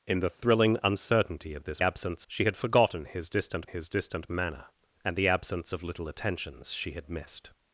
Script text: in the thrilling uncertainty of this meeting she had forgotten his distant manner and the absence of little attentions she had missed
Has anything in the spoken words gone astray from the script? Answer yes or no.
yes